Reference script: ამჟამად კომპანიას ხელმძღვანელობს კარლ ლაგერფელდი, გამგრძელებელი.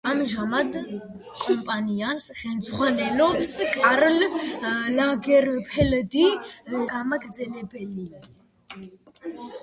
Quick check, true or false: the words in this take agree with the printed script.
true